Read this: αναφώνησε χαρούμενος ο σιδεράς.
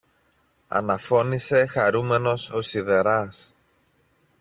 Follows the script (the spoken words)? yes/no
yes